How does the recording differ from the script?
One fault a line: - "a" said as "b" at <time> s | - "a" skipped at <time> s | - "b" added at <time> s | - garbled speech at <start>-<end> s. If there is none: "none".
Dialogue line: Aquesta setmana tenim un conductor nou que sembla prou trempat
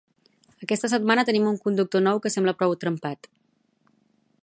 none